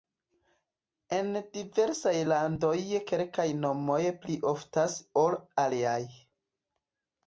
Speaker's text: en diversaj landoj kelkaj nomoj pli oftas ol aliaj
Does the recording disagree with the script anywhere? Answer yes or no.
no